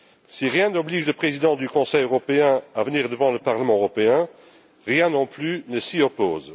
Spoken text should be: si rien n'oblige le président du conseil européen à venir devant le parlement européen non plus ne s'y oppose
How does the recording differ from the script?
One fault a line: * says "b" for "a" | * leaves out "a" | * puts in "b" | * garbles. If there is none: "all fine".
* puts in "rien"